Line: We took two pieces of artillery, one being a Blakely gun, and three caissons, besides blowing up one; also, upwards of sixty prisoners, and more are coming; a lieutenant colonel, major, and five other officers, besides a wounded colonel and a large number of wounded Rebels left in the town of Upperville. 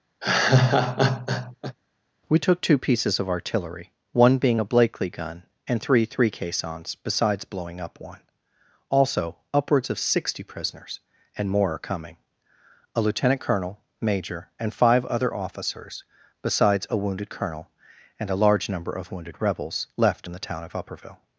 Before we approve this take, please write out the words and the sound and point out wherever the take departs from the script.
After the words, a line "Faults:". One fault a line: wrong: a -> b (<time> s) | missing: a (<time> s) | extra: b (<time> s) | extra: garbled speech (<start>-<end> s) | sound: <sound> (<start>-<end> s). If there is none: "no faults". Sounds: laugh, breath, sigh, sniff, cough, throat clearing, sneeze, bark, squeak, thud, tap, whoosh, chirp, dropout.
We took two pieces of artillery, one being a Blakely gun, and three three caissons, besides blowing up one; also, upwards of sixty prisoners, and more are coming; a lieutenant colonel, major, and five other officers, besides a wounded colonel and a large number of wounded Rebels left in the town of Upperville.
Faults:
sound: laugh (0.2-1.8 s)
extra: three (6.0 s)